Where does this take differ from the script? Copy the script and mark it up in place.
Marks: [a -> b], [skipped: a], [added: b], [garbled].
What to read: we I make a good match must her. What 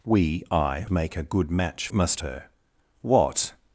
we I make a good match must her. What